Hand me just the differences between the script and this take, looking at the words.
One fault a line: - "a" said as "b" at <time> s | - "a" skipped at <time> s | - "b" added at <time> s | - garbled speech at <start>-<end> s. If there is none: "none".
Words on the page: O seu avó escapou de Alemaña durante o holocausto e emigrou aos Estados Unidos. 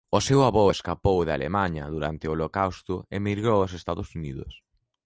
none